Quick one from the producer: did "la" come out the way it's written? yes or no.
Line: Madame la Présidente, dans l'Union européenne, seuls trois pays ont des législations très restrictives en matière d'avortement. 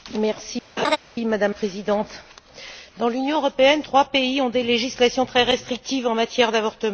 no